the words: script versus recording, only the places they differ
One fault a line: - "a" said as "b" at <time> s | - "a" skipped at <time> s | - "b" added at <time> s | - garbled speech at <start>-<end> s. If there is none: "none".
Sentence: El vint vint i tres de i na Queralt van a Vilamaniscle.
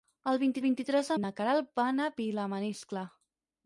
none